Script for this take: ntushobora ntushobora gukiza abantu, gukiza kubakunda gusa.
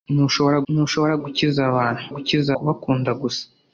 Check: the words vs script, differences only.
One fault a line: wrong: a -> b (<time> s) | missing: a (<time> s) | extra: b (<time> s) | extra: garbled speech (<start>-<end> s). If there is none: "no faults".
no faults